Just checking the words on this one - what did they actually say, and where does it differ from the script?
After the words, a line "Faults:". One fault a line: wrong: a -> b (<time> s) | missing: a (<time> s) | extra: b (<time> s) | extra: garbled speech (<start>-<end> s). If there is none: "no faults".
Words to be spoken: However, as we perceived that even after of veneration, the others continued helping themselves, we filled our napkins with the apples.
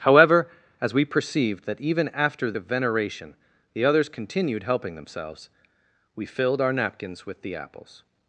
However, as we perceived that even after of veneration, the others continued helping themselves, we filled our napkins with the apples.
Faults:
no faults